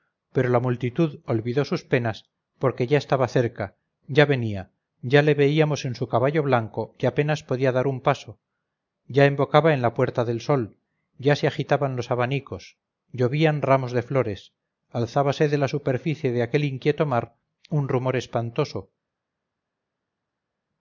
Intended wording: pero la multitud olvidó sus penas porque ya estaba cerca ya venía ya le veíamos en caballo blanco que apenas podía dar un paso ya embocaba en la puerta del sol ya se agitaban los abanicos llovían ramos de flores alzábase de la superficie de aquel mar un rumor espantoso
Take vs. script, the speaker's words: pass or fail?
fail